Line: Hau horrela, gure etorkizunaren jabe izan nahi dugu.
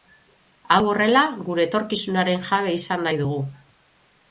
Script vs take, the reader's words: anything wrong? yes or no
no